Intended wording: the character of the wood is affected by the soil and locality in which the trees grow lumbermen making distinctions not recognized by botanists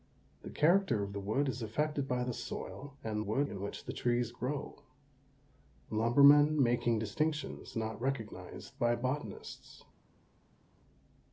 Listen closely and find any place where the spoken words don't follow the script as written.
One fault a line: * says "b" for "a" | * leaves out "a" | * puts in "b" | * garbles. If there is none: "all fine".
* says "wood" for "locality"